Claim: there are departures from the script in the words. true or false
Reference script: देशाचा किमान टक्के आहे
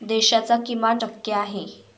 false